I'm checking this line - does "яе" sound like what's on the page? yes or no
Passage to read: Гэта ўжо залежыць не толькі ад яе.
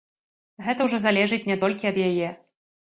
yes